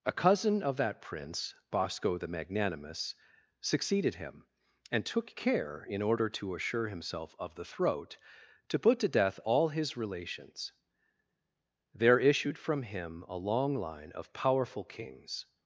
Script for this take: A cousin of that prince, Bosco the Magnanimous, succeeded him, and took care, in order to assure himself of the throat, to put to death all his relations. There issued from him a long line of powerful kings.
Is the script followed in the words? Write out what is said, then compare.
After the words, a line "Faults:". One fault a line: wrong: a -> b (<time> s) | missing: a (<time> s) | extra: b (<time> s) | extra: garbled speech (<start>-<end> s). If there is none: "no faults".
A cousin of that prince, Bosco the Magnanimous, succeeded him, and took care, in order to assure himself of the throat, to put to death all his relations. There issued from him a long line of powerful kings.
Faults:
no faults